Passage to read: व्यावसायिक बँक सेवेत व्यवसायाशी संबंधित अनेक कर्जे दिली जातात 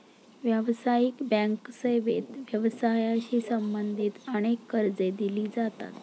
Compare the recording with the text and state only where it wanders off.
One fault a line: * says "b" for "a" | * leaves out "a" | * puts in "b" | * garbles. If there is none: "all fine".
all fine